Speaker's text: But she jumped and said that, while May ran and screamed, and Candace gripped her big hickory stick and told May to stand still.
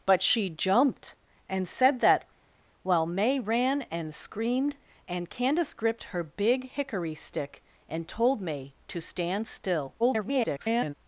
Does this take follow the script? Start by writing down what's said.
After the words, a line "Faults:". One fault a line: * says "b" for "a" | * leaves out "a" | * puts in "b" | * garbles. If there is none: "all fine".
But she jumped and said that, while May ran and screamed, and Candace gripped her big hickory stick and told May to stand still. [garbled]
Faults:
* garbles